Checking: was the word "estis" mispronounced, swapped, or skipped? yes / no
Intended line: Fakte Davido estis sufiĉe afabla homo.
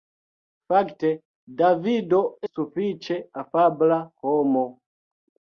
yes